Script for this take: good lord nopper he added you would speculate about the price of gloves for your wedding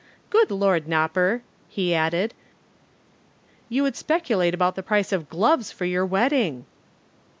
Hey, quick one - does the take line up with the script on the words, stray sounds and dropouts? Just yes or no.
yes